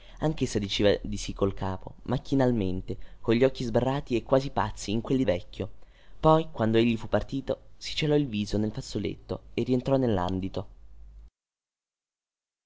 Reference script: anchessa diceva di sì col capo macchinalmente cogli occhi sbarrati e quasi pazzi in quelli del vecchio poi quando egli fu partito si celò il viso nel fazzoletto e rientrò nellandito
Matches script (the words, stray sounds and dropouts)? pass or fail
fail